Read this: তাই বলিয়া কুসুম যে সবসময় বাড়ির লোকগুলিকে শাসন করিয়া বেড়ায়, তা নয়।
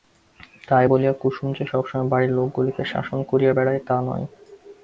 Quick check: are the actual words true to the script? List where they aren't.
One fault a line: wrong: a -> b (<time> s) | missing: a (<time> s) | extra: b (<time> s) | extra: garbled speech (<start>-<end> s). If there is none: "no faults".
no faults